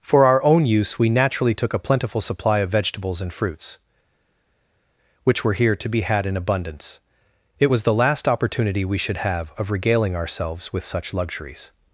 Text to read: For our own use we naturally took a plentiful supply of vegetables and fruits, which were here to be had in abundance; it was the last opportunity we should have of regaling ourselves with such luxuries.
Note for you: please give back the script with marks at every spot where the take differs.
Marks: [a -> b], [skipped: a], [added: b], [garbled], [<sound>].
For our own use we naturally took a plentiful supply of vegetables and fruits, which were here to be had in abundance; it was the last opportunity we should have of regaling ourselves with such luxuries.